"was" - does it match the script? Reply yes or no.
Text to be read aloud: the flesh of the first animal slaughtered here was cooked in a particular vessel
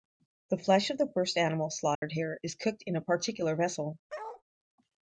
no